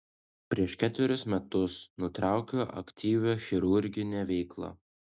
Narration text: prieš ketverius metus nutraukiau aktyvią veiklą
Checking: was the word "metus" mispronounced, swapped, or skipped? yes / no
no